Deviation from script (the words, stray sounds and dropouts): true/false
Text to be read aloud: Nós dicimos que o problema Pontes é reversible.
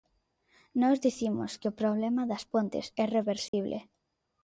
true